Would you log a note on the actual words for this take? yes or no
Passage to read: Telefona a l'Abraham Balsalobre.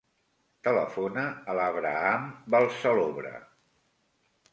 no